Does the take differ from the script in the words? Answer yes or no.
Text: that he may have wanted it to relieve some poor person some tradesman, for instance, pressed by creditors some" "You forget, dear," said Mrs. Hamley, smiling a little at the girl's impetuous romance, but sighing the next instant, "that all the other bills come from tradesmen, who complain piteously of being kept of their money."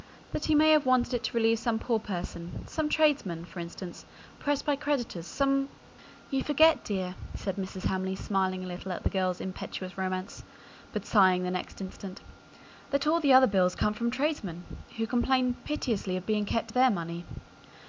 no